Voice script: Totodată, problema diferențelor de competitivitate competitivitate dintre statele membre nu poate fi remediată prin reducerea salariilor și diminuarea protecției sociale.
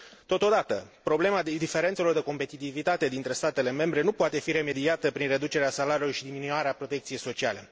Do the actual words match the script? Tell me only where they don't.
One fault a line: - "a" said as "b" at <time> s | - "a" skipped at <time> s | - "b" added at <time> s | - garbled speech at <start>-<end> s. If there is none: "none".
- "competitivitate" skipped at 3.1 s